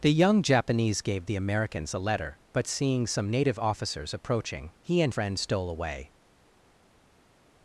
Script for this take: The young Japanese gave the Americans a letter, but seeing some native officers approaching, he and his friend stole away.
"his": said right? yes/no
no